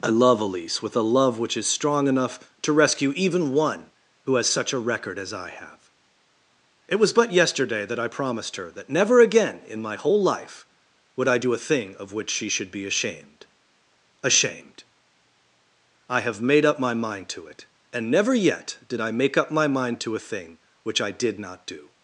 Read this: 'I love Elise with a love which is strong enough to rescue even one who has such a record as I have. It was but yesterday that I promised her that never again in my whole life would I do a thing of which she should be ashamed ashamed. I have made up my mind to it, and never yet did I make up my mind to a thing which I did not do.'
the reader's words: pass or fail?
pass